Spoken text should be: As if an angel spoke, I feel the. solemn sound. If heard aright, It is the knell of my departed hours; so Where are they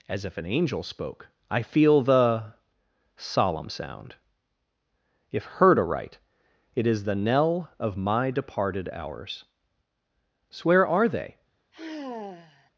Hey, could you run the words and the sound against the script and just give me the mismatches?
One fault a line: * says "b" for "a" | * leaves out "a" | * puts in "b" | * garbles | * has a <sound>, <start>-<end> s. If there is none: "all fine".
* has a sigh, 11.7-12.7 s